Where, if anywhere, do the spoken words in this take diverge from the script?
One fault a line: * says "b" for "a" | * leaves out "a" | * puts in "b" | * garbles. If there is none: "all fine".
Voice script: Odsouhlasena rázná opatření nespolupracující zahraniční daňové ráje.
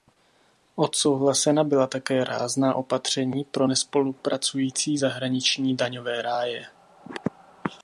* puts in "byla také"
* puts in "pro"